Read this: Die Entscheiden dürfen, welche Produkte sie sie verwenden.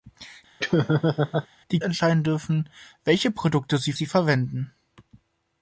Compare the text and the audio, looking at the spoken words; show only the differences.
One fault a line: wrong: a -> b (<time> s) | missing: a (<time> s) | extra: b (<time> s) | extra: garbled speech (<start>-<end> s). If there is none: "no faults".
no faults